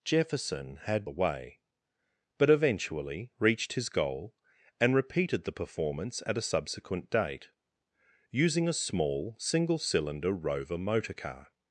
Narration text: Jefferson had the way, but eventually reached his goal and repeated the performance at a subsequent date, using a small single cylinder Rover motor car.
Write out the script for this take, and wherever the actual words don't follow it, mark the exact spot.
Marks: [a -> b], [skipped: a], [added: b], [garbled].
Jefferson had the way, but eventually reached his goal and repeated the performance at a subsequent date, using a small single cylinder Rover motor car.